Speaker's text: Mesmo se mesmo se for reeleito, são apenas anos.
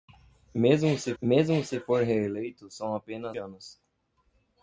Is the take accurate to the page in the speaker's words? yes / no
yes